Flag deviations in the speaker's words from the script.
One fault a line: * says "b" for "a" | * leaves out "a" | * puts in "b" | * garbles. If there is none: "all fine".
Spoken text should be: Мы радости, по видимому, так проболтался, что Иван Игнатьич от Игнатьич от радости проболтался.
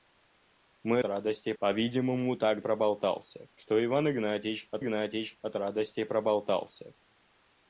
all fine